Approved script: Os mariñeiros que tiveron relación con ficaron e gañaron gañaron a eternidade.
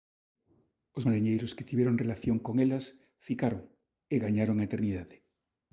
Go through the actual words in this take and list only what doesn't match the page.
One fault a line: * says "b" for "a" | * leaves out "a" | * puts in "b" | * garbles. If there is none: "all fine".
* puts in "elas"
* leaves out "gañaron"